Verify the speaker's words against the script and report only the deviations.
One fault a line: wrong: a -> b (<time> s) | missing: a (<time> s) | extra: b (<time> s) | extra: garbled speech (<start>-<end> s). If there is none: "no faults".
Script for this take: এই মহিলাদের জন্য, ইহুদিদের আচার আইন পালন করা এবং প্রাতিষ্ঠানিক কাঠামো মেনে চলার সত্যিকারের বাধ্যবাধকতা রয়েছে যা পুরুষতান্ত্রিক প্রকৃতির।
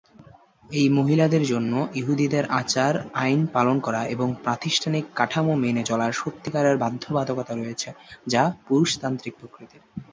no faults